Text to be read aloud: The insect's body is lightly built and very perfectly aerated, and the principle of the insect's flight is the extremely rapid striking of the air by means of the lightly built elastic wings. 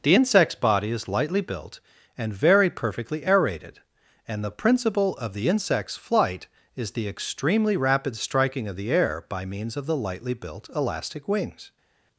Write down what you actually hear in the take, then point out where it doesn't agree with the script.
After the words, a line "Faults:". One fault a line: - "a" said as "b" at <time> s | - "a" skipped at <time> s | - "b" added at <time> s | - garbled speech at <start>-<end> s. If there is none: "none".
The insect's body is lightly built and very perfectly aerated, and the principle of the insect's flight is the extremely rapid striking of the air by means of the lightly built elastic wings.
Faults:
none